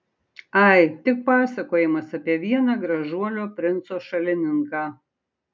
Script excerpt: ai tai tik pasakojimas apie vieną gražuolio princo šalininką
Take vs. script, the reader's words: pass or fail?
fail